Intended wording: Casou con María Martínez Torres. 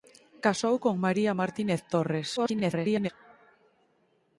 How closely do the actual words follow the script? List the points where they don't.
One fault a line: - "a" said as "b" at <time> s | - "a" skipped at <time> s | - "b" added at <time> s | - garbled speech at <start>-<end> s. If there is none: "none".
- garbled speech at 2.4-3.1 s